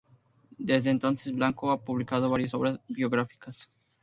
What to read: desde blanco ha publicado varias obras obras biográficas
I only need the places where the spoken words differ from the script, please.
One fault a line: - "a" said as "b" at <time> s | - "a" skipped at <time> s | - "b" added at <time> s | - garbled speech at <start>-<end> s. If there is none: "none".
- "entonces" added at 0.9 s
- "obras" skipped at 2.8 s